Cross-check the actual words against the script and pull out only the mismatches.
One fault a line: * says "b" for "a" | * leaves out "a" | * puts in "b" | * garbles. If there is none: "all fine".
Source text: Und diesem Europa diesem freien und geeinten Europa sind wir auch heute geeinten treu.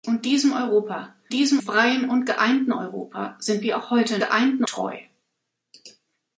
all fine